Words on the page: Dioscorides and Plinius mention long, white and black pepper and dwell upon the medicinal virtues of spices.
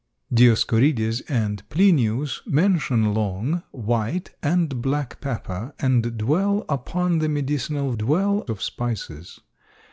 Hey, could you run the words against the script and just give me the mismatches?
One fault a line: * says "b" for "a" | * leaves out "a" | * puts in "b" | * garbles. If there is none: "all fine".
* says "dwell" for "virtues"